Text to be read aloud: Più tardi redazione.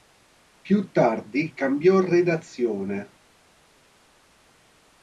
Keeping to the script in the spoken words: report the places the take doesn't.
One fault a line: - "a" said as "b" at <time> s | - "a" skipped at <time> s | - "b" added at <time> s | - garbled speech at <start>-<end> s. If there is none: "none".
- "cambiò" added at 1.5 s